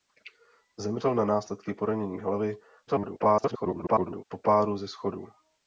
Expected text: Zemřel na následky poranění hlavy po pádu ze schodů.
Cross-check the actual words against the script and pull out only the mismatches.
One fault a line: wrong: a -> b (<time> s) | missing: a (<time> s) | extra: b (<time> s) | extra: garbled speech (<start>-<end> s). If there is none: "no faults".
extra: garbled speech (2.9-4.2 s)